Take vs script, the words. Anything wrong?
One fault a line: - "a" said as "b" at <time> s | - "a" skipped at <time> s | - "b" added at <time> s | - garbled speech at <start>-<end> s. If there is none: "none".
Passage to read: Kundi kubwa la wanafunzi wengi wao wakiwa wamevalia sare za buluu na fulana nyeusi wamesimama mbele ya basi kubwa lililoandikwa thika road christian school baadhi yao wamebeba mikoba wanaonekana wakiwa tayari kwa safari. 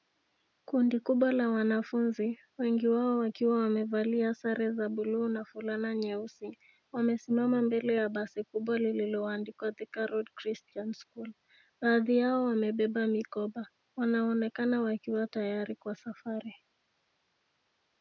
none